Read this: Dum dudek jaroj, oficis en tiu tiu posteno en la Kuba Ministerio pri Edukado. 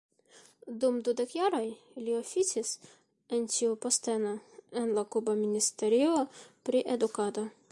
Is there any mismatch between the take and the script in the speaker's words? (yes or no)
yes